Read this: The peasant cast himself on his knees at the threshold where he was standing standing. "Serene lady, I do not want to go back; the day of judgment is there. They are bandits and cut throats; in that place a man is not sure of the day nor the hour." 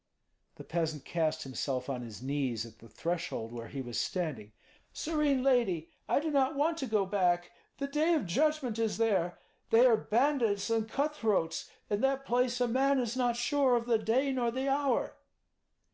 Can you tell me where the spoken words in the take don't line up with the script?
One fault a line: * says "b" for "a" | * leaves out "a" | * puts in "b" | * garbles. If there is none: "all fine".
* leaves out "standing"